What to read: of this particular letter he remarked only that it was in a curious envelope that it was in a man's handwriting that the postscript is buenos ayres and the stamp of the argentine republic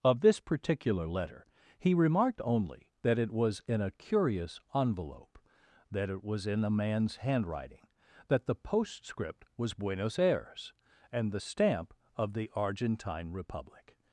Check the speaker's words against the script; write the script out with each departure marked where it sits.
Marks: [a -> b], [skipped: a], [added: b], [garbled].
of this particular letter he remarked only that it was in a curious envelope that it was in a man's handwriting that the postscript [is -> was] buenos ayres and the stamp of the argentine republic